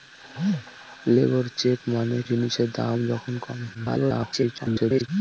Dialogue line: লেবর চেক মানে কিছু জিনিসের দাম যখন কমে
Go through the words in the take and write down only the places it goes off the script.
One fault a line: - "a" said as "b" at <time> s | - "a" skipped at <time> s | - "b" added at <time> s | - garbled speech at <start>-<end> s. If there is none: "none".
- "কিছু" skipped at 2.2 s
- garbled speech at 3.7-5.1 s